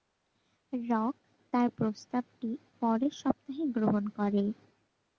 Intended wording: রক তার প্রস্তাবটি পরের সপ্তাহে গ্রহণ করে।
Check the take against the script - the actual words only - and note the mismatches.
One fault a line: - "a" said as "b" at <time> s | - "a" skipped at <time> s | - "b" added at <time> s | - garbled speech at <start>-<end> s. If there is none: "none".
none